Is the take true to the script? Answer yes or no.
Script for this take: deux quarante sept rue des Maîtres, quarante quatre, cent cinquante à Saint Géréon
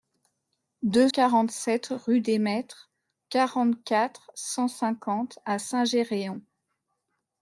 yes